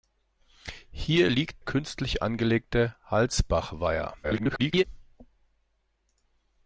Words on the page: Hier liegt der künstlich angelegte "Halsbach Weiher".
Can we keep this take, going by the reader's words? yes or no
no